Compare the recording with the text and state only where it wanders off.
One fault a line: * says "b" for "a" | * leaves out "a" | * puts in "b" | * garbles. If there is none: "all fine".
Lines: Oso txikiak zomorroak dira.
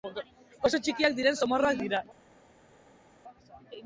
* puts in "diren"